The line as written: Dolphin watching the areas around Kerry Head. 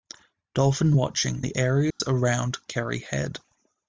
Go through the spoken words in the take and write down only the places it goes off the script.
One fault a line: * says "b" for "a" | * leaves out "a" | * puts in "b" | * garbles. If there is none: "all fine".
all fine